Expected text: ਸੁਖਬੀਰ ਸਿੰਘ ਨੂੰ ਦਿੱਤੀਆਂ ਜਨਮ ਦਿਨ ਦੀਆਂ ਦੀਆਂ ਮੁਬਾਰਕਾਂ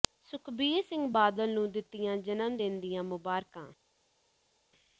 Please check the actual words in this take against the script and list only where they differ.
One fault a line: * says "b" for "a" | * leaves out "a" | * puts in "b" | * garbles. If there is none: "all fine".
* puts in "ਬਾਦਲ"
* leaves out "ਦੀਆਂ"